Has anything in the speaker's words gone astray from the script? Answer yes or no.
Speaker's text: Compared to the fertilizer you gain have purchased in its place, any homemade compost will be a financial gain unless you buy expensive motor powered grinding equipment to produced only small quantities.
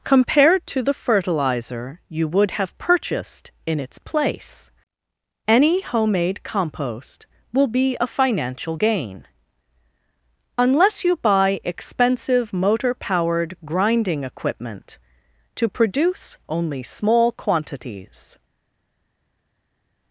yes